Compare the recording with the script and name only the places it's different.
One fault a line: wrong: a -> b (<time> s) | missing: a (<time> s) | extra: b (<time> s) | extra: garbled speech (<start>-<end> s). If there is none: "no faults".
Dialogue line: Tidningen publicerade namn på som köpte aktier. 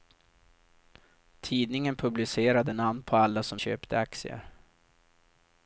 extra: alla (3.2 s)